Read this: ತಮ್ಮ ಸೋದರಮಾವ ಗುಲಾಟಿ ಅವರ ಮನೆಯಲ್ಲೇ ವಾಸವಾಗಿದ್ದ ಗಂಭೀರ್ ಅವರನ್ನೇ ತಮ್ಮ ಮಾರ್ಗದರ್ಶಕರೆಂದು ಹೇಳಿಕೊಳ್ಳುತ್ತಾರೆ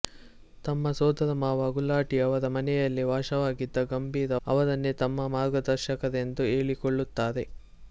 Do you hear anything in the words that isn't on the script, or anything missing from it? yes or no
no